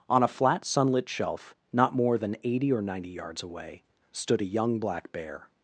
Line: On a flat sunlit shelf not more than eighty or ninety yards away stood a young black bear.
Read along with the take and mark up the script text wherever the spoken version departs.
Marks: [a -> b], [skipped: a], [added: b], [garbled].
On a flat sunlit shelf not more than eighty or ninety yards away stood a young black bear.